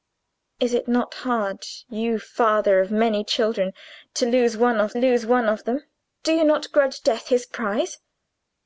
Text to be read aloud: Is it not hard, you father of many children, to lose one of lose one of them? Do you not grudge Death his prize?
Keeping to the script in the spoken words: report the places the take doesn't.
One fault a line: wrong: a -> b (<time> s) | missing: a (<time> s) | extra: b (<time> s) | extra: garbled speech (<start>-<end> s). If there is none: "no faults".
no faults